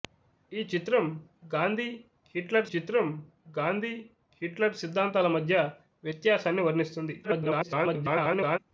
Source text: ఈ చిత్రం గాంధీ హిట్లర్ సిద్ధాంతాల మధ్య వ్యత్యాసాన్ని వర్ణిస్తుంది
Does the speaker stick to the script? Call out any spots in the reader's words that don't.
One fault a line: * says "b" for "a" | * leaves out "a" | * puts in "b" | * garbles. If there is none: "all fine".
* puts in "చిత్రం గాంధీ హిట్లర్"
* garbles